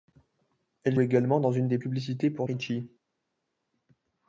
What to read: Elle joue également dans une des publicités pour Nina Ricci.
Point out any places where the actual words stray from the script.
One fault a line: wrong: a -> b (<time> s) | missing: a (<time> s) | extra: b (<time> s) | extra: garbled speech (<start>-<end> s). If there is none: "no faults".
missing: joue (1.0 s)
missing: Nina (2.5 s)